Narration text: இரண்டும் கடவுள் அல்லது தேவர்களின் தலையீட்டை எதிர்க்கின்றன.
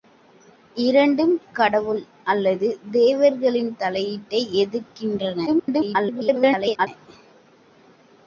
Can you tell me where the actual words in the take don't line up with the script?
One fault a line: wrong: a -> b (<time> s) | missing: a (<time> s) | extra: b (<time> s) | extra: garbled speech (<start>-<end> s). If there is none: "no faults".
extra: garbled speech (5.5-6.9 s)